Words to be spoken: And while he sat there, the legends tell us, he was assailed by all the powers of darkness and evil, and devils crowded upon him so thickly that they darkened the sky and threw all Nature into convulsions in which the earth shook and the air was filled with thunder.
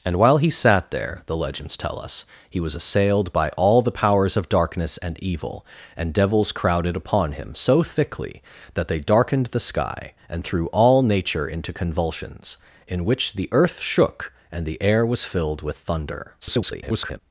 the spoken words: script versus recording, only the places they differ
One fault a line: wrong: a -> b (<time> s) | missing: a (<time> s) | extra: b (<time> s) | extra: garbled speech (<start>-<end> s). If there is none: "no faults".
extra: garbled speech (16.4-17.2 s)